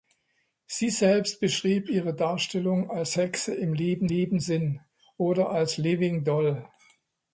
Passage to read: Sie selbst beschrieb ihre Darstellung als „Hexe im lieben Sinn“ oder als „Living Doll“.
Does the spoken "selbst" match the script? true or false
true